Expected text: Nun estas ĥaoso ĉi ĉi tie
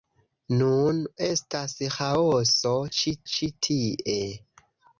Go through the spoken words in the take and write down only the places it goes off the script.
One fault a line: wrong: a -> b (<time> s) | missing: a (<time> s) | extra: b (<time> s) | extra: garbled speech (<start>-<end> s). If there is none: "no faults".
no faults